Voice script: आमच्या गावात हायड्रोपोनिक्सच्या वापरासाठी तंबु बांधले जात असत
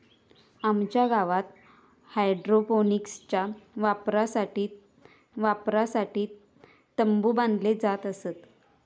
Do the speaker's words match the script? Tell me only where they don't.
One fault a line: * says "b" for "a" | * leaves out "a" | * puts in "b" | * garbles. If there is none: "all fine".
* puts in "वापरासाठी"